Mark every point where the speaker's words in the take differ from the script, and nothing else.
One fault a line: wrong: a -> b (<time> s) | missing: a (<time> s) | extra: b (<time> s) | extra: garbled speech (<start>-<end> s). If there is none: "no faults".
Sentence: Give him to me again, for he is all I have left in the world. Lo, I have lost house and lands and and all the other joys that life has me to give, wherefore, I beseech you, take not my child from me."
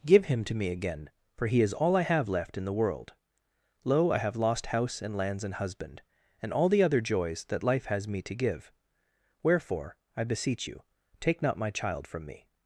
extra: husband (5.6 s)